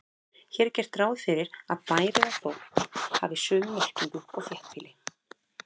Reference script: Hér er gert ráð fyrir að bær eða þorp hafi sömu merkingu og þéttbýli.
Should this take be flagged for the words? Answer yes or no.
no